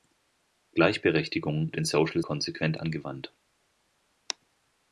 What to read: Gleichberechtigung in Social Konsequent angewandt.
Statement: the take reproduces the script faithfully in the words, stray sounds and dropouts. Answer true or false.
true